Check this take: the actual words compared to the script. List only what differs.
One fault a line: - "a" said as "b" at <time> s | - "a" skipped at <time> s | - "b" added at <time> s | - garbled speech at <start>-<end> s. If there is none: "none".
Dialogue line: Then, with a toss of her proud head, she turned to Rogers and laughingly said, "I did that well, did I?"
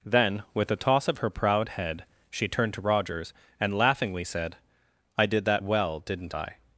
- "did" said as "didn't" at 6.0 s